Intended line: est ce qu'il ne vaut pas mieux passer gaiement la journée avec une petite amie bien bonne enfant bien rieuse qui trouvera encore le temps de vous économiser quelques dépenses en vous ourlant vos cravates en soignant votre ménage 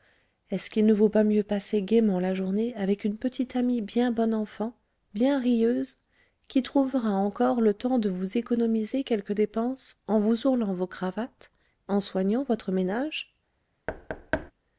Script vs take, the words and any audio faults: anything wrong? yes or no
yes